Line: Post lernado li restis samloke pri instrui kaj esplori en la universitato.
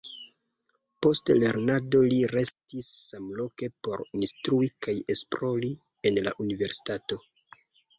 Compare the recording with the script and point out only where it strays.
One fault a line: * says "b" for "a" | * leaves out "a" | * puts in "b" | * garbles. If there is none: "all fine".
* says "por" for "pri"